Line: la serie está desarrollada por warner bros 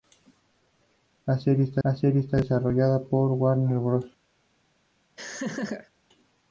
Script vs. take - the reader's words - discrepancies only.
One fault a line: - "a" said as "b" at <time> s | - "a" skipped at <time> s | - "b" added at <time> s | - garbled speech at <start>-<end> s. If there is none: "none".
- "la serie está" added at 1.8 s